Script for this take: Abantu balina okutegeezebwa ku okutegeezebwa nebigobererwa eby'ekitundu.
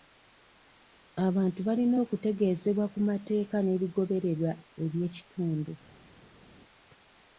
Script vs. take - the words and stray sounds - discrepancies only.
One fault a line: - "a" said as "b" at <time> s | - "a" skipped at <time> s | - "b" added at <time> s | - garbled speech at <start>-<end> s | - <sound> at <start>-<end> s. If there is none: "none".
- "okutegeezebwa" said as "mateeka" at 3.1 s